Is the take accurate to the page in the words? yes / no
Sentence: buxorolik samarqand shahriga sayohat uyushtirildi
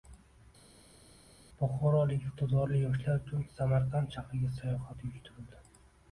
no